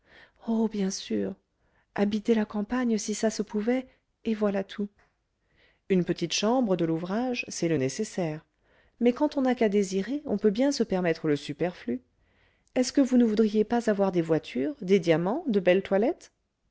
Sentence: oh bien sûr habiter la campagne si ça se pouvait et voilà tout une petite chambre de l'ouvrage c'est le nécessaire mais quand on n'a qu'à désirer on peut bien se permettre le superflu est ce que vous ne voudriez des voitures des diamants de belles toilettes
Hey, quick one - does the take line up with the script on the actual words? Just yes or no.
no